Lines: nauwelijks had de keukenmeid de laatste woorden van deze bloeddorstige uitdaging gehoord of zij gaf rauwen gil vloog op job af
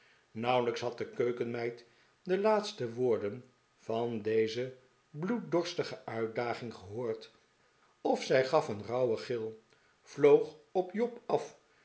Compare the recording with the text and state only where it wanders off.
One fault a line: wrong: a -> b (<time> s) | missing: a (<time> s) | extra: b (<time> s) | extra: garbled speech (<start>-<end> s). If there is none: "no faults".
extra: een (8.7 s)